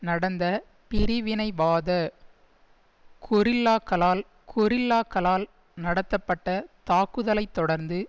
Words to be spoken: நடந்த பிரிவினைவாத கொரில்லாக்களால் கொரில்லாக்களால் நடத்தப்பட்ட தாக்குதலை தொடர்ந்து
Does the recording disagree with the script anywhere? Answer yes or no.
no